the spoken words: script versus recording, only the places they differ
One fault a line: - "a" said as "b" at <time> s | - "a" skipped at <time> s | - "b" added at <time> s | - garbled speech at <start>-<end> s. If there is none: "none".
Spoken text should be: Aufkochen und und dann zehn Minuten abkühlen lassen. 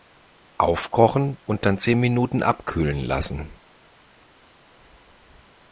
- "und" skipped at 1.6 s